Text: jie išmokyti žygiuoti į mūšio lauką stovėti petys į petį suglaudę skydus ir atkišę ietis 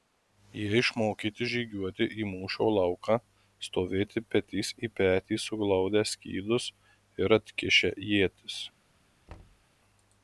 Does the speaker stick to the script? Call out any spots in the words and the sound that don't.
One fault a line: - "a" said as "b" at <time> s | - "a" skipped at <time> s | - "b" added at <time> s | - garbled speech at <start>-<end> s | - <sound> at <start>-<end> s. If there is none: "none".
- thud at 9.3-9.7 s